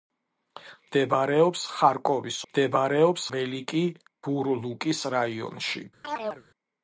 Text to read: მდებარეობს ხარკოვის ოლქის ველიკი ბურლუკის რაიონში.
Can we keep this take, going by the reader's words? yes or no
no